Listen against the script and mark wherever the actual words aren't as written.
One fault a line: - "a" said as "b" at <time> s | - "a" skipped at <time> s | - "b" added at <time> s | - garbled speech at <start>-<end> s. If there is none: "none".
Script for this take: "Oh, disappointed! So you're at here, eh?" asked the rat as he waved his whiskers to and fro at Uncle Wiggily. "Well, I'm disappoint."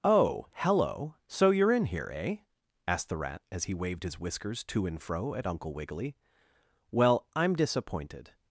- "disappointed" said as "hello" at 0.6 s
- "at" said as "in" at 1.7 s
- "disappoint" said as "disappointed" at 7.5 s